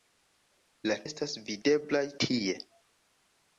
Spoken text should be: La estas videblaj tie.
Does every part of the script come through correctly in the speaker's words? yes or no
yes